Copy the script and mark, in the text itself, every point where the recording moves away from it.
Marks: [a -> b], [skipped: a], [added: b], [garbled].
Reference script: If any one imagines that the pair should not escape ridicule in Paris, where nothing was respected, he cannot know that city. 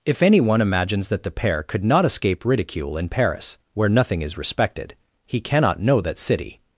If any one imagines that the pair [should -> could] not escape ridicule in Paris, where nothing [was -> is] respected, he cannot know that city.